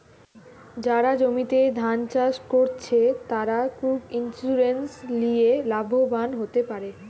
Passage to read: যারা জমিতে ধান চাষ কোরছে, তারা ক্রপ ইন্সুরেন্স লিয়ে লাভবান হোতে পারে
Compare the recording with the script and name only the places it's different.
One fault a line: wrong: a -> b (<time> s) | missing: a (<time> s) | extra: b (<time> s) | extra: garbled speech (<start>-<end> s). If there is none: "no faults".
no faults